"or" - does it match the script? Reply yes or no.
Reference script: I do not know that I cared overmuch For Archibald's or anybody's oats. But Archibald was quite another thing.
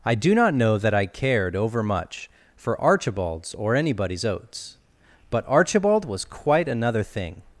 yes